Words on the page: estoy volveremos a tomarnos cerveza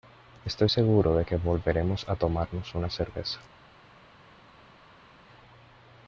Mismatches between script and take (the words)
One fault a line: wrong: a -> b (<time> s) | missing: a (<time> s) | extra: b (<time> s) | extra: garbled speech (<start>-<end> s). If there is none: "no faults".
extra: seguro de que (0.7 s)
extra: una (2.8 s)